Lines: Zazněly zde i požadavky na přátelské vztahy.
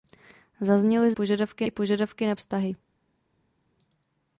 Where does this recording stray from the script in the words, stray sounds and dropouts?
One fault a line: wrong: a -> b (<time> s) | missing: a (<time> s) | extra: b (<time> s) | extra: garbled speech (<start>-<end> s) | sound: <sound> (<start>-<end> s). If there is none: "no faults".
wrong: zde -> požadavky (1.1 s)
missing: přátelské (2.3 s)